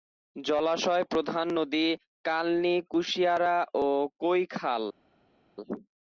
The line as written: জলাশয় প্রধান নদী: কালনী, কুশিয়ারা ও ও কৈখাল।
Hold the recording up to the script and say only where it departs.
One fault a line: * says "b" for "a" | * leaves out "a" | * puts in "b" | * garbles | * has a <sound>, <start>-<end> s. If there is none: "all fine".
* leaves out "ও"